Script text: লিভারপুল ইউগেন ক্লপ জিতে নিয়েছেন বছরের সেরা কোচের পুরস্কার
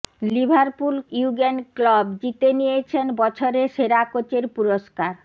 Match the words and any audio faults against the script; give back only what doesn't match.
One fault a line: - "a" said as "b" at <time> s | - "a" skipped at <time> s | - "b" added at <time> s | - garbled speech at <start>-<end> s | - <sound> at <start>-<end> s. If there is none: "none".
none